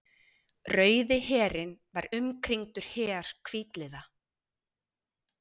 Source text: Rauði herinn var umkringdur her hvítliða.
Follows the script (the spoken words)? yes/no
yes